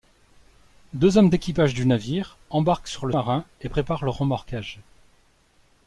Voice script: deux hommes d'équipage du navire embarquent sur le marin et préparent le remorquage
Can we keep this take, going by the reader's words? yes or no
yes